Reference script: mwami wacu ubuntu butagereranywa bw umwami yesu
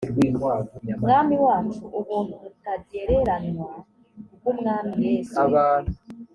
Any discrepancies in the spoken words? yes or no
no